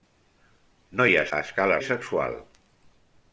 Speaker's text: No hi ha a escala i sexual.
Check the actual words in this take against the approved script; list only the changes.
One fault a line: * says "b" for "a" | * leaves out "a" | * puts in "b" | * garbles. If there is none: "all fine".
all fine